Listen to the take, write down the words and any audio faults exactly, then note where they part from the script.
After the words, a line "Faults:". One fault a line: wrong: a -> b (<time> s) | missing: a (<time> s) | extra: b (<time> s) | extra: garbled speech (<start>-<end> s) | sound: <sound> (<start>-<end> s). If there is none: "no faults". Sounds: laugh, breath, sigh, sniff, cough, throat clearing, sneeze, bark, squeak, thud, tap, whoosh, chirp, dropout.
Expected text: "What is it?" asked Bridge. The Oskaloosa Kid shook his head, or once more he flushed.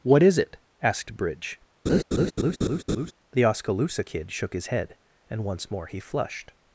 "What is it?" asked Bridge. The Oskaloosa Kid shook his head, and once more he flushed.
Faults:
sound: laugh (1.9-3.1 s)
wrong: or -> and (5.3 s)